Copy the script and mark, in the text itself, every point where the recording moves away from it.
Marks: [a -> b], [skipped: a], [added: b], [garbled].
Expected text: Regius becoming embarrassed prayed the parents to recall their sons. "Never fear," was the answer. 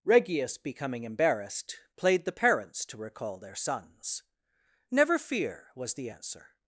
Regius becoming embarrassed [prayed -> played] the parents to recall their sons. "Never fear," was the answer.